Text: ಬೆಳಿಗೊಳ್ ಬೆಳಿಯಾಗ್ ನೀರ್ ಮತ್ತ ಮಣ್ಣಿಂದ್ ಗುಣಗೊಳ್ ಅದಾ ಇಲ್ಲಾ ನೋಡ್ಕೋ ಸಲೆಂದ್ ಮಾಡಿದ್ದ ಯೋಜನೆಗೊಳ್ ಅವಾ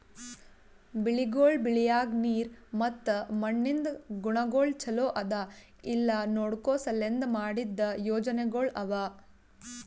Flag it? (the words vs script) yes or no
yes